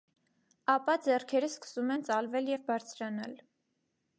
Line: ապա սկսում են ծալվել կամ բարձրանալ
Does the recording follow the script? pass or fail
fail